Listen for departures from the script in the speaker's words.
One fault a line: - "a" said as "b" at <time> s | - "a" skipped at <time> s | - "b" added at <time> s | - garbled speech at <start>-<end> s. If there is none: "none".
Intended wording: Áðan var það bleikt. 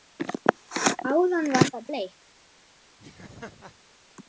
none